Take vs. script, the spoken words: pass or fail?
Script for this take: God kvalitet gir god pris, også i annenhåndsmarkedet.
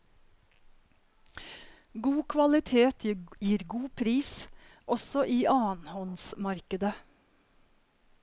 pass